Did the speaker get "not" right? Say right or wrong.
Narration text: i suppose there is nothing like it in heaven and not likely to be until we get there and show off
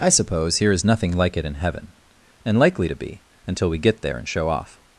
wrong